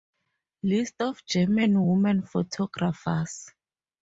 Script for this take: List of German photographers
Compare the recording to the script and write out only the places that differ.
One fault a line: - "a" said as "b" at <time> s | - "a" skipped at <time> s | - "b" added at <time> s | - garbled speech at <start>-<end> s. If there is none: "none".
- "women" added at 1.8 s